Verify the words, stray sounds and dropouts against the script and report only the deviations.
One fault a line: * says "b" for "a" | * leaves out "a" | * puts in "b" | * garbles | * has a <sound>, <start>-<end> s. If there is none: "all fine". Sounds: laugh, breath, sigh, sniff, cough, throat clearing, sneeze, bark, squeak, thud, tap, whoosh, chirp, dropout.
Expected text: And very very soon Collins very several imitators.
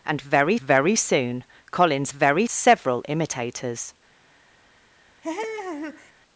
* has a laugh, 5.2-6.1 s